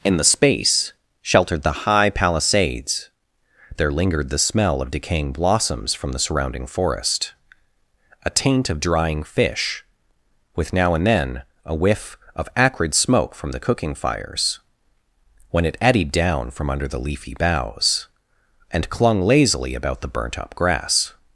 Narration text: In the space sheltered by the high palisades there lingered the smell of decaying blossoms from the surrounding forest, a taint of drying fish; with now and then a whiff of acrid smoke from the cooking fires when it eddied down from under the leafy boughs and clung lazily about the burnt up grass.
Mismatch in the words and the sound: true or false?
true